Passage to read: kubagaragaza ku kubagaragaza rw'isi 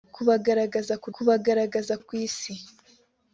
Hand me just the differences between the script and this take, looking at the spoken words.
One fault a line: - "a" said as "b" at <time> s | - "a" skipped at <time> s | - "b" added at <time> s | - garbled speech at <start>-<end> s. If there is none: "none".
none